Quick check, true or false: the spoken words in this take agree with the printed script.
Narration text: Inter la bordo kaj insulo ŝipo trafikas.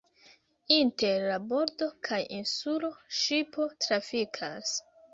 true